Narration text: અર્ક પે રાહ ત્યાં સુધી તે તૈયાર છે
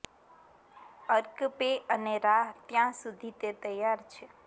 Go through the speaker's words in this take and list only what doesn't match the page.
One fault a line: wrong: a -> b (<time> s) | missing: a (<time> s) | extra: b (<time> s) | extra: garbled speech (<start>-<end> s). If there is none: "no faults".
extra: અને (1.9 s)